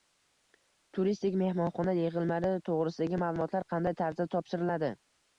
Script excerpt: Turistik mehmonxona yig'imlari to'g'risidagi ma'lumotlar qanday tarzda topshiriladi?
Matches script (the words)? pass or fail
pass